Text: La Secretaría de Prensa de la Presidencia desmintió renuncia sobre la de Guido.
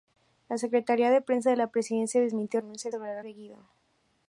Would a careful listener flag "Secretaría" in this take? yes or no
no